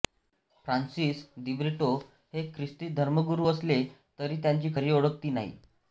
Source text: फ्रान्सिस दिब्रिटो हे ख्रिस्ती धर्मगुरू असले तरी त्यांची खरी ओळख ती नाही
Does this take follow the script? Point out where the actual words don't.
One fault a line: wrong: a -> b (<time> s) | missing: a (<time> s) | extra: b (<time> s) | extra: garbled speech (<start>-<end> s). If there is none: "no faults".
no faults